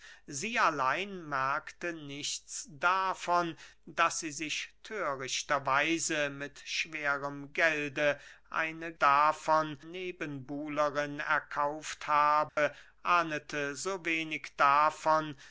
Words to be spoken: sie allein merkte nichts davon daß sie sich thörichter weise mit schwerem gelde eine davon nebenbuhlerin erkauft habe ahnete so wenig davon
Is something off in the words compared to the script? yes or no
no